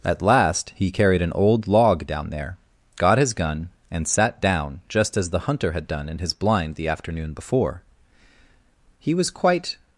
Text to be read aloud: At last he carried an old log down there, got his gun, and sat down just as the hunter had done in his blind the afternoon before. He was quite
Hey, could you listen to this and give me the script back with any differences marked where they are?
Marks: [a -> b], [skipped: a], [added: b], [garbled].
At last he carried an old log down there, got his gun, and sat down just as the hunter had done in his blind the afternoon before. He was quite